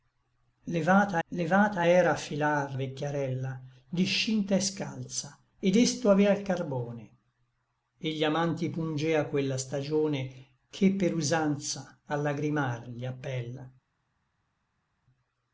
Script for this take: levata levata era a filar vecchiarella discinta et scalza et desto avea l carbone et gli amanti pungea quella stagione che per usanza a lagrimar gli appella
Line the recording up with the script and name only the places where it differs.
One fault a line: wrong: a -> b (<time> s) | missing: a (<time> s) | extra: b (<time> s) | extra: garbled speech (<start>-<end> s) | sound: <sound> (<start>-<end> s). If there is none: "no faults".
no faults